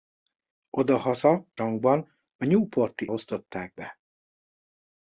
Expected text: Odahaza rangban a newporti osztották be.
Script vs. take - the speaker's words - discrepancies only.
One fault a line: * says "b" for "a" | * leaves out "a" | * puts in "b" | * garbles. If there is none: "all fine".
all fine